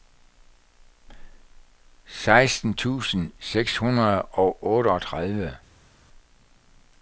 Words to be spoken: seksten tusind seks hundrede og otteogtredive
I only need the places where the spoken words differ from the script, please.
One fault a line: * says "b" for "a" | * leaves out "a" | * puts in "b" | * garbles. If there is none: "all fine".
all fine